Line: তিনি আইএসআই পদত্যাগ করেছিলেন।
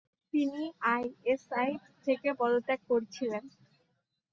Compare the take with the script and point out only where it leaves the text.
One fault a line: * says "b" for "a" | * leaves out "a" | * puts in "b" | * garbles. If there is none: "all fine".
* puts in "থেকে"